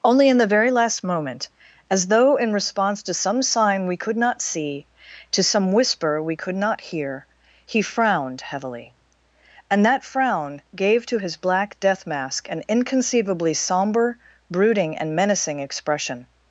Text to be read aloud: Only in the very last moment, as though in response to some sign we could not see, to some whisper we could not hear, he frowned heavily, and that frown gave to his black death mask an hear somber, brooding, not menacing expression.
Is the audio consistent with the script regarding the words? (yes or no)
no